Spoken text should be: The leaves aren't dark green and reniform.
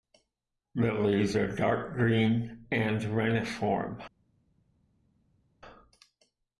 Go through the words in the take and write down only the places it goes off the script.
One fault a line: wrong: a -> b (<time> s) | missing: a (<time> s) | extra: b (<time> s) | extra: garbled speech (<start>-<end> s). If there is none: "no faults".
wrong: aren't -> are (1.4 s)